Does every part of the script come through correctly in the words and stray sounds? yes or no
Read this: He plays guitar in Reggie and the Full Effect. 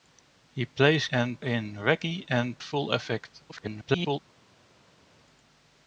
no